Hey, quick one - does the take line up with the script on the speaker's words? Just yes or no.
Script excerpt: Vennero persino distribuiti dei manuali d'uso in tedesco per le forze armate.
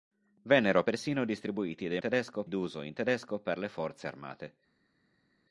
no